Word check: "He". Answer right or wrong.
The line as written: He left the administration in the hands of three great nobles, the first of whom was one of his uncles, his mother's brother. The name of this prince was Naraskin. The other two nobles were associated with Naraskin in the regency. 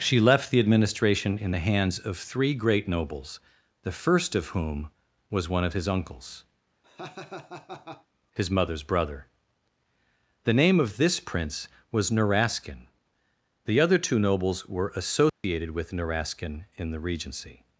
wrong